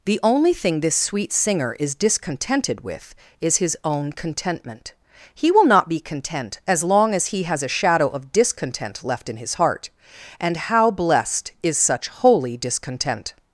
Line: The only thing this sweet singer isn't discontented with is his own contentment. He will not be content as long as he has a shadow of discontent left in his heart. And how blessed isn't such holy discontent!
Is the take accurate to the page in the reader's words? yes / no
no